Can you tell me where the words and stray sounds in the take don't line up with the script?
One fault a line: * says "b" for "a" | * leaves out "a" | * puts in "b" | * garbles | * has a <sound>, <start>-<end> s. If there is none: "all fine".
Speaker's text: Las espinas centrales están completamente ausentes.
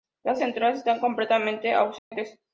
* leaves out "espinas"
* has a dropout, 2.0-2.1 s